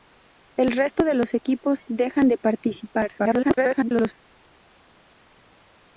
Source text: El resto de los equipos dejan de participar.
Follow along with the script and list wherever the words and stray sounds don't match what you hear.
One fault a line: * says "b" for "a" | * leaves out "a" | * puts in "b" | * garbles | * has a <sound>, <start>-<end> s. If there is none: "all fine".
* garbles